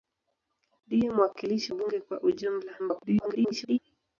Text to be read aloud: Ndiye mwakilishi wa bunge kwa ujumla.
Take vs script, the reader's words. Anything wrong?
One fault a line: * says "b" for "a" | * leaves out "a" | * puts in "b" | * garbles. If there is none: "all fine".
* leaves out "wa"
* garbles